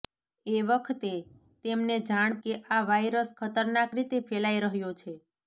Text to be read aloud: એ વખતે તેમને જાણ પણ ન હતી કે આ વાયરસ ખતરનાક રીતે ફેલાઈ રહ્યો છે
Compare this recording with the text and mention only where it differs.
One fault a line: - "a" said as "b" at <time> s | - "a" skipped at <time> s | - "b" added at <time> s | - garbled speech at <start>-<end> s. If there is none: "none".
- "પણ ન હતી" skipped at 2.4 s